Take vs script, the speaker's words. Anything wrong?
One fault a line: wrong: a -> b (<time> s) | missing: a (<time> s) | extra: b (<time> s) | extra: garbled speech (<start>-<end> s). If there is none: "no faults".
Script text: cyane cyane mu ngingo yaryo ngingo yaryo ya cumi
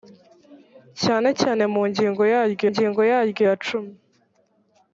no faults